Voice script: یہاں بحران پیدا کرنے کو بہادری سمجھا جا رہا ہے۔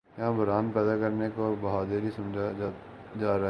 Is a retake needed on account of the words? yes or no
no